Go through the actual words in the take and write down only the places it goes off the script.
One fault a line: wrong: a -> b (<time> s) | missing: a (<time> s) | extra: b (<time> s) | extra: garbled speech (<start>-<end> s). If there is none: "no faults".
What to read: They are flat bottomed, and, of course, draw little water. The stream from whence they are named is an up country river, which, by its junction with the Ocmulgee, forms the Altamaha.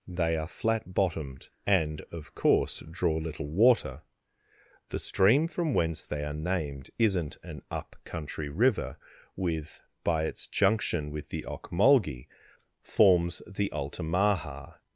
wrong: is -> isn't (7.0 s)
wrong: which -> with (9.3 s)